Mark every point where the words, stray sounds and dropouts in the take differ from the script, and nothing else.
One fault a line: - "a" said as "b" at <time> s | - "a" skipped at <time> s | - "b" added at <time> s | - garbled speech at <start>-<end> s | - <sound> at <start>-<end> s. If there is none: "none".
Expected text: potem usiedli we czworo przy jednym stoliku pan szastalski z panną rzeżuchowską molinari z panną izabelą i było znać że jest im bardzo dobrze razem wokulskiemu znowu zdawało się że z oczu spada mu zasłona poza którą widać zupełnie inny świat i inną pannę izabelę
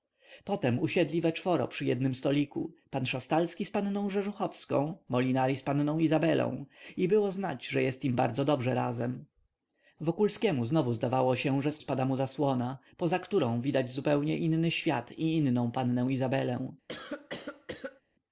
- "oczu" skipped at 11.8 s
- cough at 16.9-18.0 s